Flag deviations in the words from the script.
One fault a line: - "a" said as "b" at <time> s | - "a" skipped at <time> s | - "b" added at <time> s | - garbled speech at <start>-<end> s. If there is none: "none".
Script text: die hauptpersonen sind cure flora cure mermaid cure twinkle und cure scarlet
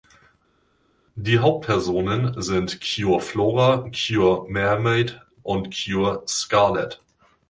- "cure twinkle" skipped at 5.2 s